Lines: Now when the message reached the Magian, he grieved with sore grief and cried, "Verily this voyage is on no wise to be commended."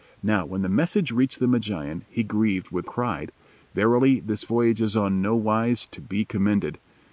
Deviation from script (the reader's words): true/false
true